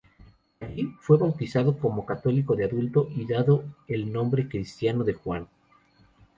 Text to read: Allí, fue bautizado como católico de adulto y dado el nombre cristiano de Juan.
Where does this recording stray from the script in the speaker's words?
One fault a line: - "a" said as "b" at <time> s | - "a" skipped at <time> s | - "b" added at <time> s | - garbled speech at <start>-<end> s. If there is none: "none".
none